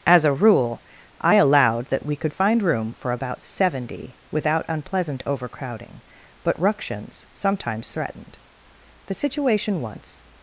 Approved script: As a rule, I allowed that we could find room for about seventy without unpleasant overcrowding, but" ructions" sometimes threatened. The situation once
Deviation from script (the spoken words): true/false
false